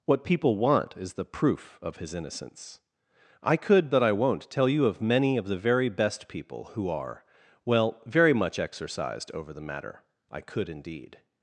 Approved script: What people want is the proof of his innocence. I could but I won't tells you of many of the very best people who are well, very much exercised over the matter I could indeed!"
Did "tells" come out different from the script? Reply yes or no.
yes